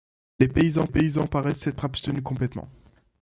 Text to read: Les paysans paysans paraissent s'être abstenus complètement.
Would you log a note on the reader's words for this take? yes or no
no